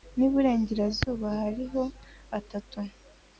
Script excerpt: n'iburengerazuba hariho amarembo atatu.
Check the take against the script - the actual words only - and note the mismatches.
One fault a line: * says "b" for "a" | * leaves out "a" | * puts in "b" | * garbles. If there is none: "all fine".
* leaves out "amarembo"